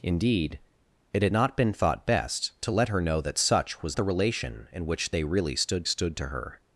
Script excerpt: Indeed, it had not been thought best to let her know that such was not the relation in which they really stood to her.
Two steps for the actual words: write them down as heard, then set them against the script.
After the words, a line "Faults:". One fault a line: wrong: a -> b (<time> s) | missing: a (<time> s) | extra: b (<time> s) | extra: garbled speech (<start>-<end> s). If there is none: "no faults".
Indeed, it had not been thought best to let her know that such was the relation in which they really stood stood to her.
Faults:
missing: not (4.0 s)
extra: stood (5.8 s)